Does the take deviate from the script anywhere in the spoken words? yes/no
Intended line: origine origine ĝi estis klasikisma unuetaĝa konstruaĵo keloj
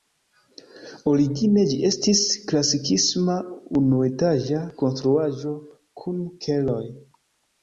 yes